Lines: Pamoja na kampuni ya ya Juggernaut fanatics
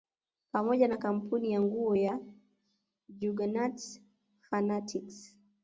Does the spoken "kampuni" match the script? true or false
true